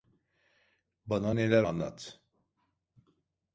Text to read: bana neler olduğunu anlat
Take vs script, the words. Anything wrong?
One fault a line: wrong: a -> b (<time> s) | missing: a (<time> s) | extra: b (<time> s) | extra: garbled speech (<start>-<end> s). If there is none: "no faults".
missing: olduğunu (1.6 s)